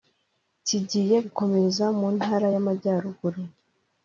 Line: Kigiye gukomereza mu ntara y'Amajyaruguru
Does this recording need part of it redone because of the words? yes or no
no